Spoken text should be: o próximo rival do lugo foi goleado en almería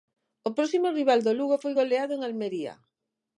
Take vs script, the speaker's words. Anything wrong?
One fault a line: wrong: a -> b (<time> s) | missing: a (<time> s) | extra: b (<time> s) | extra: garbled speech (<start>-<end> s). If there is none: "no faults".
no faults